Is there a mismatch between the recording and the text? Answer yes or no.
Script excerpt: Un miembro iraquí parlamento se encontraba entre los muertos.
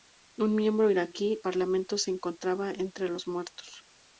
no